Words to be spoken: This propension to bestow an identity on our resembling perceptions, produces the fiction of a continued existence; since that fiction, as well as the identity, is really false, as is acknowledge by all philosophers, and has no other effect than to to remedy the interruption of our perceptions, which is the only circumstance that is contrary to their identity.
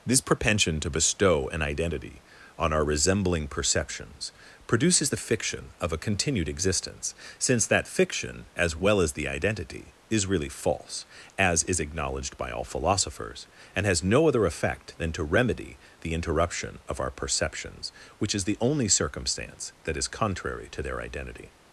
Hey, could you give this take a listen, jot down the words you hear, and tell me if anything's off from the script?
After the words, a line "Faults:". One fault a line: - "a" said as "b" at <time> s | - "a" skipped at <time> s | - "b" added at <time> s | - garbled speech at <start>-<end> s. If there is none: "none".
This propension to bestow an identity on our resembling perceptions, produces the fiction of a continued existence; since that fiction, as well as the identity, is really false, as is acknowledged by all philosophers, and has no other effect than to remedy the interruption of our perceptions, which is the only circumstance that is contrary to their identity.
Faults:
- "acknowledge" said as "acknowledged" at 11.8 s
- "to" skipped at 15.2 s